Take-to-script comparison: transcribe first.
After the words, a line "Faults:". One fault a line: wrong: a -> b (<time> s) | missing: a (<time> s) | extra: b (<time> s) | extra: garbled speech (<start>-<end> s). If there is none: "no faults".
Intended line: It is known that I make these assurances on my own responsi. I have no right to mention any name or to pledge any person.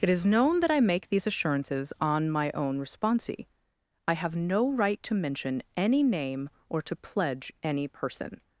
It is known that I make these assurances on my own responsi. I have no right to mention any name or to pledge any person.
Faults:
no faults